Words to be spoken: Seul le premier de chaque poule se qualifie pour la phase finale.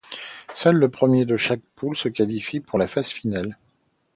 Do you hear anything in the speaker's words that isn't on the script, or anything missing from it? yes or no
no